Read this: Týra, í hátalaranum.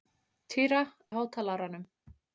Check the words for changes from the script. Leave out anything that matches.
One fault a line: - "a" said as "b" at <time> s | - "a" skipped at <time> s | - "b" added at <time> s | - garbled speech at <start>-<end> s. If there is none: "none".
none